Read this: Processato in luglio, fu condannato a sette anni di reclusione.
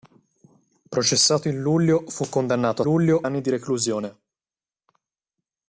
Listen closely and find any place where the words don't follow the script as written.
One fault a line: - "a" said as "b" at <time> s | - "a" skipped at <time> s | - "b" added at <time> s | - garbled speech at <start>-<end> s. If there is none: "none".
- "sette" said as "luglio" at 2.8 s